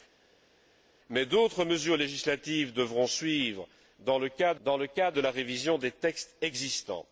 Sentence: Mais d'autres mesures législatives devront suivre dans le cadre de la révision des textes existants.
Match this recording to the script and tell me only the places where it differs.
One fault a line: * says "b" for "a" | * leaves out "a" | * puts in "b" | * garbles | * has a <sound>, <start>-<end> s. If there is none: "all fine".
* puts in "dans le cadre"